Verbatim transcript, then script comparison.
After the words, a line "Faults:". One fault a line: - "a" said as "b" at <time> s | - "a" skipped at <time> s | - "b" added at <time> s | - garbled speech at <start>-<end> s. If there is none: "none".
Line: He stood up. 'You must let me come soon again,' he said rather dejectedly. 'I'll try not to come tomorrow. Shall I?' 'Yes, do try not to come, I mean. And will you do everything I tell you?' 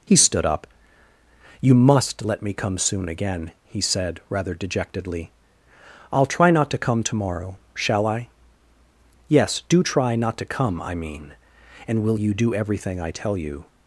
He stood up. 'You must let me come soon again,' he said rather dejectedly. 'I'll try not to come tomorrow. Shall I?' 'Yes, do try not to come, I mean. And will you do everything I tell you?'
Faults:
none